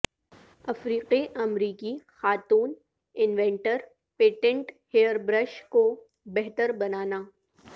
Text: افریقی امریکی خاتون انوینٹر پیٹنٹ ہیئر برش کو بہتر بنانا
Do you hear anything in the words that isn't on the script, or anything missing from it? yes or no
no